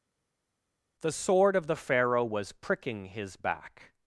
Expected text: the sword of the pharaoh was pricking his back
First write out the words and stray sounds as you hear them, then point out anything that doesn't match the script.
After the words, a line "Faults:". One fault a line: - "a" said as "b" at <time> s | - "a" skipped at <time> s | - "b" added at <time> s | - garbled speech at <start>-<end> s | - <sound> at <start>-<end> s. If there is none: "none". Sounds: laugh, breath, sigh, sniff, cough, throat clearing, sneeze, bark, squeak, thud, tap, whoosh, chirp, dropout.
the sword of the pharaoh was pricking his back
Faults:
none